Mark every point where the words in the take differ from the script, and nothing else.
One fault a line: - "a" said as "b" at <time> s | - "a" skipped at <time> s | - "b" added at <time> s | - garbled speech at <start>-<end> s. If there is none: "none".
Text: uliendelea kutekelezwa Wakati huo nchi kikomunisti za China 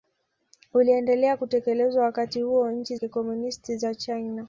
none